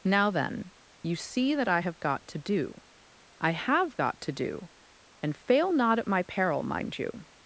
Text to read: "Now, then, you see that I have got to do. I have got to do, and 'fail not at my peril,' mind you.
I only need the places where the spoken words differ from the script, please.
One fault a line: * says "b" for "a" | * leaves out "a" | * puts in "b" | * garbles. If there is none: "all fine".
all fine